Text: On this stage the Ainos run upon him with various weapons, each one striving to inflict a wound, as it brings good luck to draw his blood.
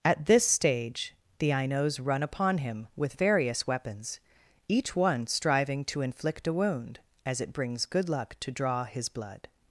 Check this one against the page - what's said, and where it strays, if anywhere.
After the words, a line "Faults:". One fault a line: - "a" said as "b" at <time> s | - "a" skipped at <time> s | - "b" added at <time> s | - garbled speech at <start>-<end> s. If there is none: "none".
At this stage the Ainos run upon him with various weapons, each one striving to inflict a wound, as it brings good luck to draw his blood.
Faults:
- "On" said as "At" at 0.0 s